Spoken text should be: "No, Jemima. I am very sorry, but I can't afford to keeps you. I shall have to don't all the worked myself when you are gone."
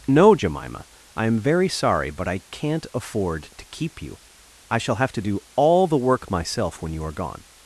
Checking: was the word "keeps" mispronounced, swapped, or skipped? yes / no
yes